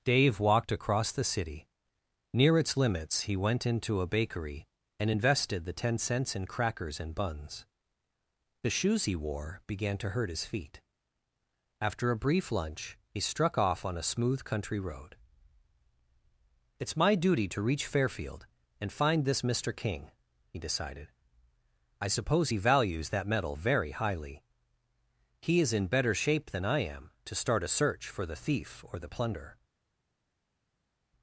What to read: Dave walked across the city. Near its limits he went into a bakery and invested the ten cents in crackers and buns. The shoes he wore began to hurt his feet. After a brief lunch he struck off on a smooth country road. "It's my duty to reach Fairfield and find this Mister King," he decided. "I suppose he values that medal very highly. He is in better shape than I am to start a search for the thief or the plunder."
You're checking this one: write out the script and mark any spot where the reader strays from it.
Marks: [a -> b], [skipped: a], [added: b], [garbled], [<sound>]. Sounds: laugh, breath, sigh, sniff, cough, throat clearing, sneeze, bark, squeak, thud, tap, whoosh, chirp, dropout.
Dave walked across the city. Near its limits he went into a bakery and invested the ten cents in crackers and buns. The shoes he wore began to hurt his feet. After a brief lunch he struck off on a smooth country road. "It's my duty to reach Fairfield and find this Mister King," he decided. "I suppose he values that medal very highly. He is in better shape than I am to start a search for the thief or the plunder."